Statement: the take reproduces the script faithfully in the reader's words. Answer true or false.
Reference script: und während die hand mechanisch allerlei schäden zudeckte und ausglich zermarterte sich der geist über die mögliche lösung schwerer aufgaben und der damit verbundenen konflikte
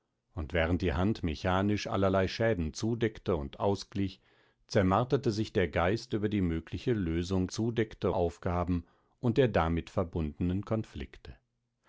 false